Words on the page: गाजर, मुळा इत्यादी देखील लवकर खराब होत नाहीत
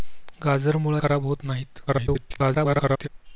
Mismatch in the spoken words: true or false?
true